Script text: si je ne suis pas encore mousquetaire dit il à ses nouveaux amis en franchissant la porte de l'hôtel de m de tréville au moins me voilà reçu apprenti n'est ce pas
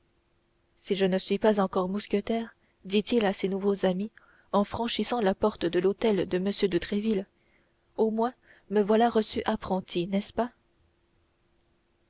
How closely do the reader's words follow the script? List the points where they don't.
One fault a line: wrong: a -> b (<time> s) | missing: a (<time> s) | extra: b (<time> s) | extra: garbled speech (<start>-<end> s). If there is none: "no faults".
no faults